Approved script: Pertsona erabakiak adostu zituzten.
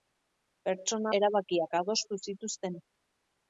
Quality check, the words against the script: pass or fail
pass